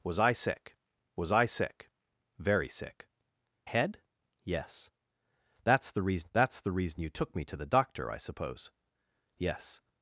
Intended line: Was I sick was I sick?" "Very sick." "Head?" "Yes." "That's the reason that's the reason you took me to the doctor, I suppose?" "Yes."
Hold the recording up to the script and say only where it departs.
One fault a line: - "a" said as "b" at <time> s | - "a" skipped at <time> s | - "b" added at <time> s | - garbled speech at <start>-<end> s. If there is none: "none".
none